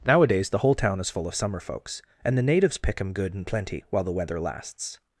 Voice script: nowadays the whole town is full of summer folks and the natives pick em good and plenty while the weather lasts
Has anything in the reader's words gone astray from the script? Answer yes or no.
no